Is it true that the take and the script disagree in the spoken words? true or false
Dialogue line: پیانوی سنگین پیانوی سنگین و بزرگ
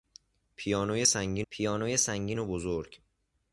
false